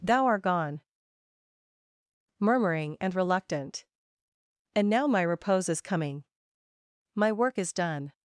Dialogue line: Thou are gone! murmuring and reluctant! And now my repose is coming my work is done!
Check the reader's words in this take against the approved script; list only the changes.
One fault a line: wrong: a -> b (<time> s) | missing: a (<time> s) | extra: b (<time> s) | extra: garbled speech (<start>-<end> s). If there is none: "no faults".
wrong: are -> art (0.2 s)